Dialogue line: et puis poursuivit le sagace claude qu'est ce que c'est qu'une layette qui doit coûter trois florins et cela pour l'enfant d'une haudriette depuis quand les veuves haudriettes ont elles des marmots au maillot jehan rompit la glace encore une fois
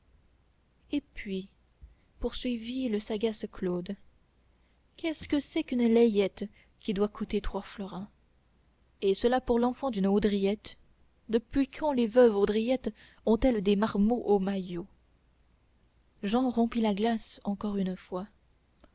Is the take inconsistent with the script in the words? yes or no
no